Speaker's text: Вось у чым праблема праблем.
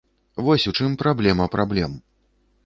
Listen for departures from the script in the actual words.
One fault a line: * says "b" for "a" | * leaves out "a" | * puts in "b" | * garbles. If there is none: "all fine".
all fine